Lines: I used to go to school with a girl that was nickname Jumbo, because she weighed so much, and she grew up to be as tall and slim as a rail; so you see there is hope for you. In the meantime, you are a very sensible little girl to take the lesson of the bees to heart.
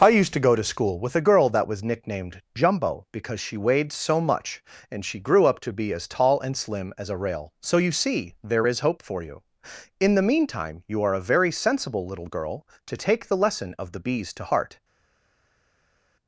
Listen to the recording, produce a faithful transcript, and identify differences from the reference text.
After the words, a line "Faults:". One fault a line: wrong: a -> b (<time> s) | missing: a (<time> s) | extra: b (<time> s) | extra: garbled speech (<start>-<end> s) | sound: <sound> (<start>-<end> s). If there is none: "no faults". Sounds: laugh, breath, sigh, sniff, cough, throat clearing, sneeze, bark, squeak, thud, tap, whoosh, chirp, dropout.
I used to go to school with a girl that was nicknamed Jumbo, because she weighed so much, and she grew up to be as tall and slim as a rail; so you see there is hope for you. In the meantime, you are a very sensible little girl to take the lesson of the bees to heart.
Faults:
wrong: nickname -> nicknamed (1.8 s)